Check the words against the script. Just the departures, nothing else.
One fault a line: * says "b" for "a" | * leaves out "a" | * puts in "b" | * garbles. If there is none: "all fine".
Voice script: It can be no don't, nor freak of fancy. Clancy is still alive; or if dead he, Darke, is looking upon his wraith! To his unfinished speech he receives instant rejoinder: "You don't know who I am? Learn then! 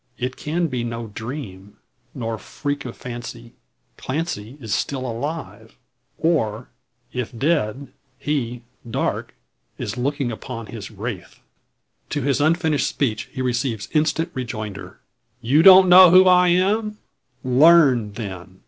* says "dream" for "don't"